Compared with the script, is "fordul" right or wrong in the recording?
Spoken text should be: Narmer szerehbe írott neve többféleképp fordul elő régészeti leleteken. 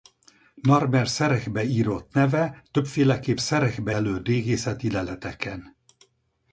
wrong